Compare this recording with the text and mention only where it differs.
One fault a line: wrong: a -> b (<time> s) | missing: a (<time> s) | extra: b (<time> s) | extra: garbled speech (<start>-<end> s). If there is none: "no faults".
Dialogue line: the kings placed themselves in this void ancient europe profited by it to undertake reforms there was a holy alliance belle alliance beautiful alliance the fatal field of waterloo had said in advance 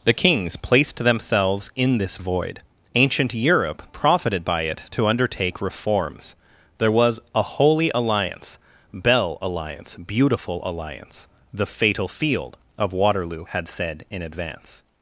no faults